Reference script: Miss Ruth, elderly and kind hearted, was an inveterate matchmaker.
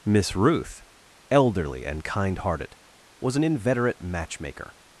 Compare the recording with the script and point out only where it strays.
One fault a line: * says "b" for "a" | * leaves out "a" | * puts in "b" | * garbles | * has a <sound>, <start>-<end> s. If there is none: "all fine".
all fine